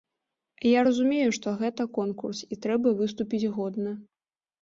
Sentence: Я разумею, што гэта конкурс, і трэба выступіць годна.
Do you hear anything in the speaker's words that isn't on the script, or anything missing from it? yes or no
no